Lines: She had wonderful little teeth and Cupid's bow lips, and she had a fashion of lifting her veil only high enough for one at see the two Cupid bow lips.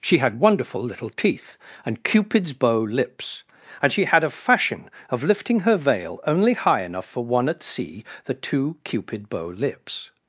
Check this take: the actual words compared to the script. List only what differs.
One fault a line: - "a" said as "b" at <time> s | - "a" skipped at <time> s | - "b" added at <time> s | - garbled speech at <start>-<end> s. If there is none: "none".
none